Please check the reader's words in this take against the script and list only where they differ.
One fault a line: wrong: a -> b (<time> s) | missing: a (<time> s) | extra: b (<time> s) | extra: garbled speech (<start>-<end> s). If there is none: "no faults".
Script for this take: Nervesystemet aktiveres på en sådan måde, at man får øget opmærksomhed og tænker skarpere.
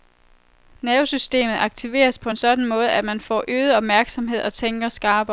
no faults